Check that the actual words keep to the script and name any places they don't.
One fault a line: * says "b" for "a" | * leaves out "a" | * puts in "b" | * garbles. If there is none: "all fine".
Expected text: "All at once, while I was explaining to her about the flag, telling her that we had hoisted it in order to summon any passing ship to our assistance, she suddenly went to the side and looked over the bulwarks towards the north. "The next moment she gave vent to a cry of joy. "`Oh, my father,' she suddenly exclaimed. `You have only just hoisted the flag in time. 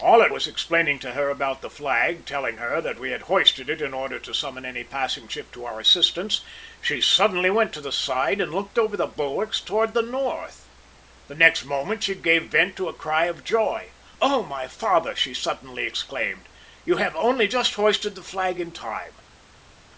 * leaves out "once while I"